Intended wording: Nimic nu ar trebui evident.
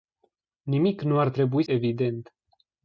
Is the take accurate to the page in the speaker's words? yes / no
yes